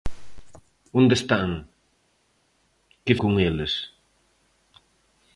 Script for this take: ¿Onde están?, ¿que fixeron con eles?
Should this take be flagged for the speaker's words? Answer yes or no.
yes